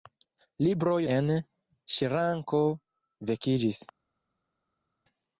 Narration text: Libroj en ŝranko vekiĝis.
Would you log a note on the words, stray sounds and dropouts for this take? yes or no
no